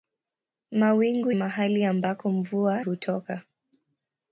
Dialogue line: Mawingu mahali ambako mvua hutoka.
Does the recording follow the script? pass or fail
pass